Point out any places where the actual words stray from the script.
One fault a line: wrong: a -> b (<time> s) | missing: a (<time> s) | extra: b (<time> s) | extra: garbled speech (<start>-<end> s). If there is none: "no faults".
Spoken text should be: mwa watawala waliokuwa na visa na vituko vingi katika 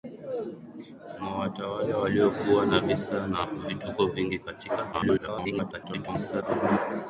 extra: garbled speech (4.9-6.4 s)